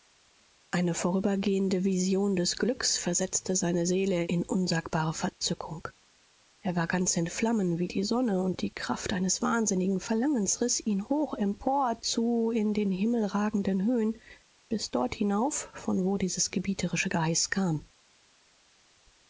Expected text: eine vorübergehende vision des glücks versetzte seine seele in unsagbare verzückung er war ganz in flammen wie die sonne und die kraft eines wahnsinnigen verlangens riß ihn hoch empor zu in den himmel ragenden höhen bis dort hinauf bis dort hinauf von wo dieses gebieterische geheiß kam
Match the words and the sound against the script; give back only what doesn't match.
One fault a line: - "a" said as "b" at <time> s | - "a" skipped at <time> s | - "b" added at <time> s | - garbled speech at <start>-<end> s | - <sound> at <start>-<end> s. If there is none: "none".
- "bis dort hinauf" skipped at 15.7 s